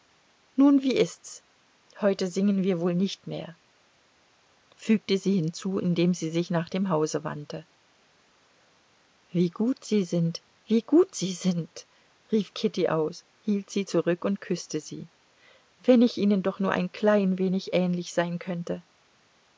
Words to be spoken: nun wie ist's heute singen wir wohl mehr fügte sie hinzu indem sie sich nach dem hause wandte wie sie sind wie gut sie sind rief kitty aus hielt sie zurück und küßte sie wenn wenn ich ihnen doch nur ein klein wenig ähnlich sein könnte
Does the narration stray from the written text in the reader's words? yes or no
yes